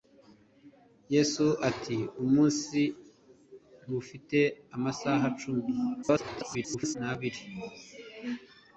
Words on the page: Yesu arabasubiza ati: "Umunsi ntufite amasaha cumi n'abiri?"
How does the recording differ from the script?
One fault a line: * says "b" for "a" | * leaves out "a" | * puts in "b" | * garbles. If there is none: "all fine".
* leaves out "arabasubiza"
* garbles